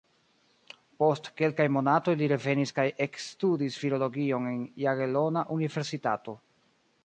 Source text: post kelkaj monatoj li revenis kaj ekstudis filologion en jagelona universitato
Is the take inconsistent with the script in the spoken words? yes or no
no